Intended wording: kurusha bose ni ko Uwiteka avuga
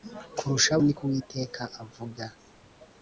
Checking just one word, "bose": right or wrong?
wrong